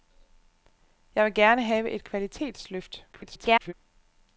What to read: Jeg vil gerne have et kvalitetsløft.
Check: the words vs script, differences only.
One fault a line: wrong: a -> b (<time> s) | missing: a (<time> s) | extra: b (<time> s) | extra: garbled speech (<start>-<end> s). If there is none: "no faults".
extra: garbled speech (3.1-3.7 s)